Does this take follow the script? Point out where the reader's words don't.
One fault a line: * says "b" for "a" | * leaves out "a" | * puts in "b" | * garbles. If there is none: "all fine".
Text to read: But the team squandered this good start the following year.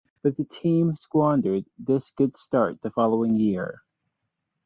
all fine